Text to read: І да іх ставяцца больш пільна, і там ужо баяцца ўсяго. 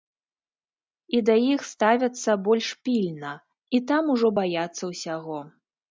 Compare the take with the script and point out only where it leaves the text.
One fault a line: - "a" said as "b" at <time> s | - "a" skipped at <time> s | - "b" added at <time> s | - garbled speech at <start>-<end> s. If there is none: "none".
none